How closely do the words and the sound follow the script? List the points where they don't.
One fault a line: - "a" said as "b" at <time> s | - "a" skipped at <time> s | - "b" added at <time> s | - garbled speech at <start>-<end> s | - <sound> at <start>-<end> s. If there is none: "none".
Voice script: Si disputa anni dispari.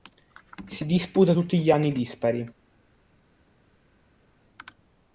- "tutti gli" added at 1.3 s